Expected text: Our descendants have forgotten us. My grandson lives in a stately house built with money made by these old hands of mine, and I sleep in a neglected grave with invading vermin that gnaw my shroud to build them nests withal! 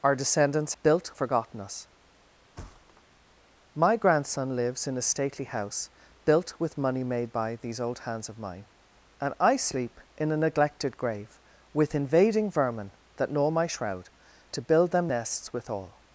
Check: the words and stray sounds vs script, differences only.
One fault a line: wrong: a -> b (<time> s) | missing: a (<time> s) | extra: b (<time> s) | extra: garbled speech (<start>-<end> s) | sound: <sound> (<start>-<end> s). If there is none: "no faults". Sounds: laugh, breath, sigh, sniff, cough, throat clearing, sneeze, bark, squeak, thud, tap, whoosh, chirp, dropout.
wrong: have -> built (0.8 s)
sound: thud (2.6-3.0 s)